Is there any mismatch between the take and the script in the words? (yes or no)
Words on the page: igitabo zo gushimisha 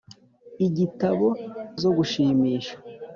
no